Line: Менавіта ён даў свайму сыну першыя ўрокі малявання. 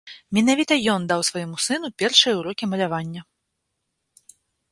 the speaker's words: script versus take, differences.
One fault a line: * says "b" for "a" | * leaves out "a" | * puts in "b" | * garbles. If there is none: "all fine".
all fine